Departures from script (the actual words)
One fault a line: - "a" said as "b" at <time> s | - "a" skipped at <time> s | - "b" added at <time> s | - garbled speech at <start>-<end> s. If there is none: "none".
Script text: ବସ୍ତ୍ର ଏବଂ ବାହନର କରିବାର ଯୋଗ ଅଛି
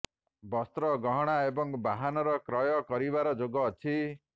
- "ଗହଣା" added at 1.0 s
- "କ୍ରୟ" added at 2.5 s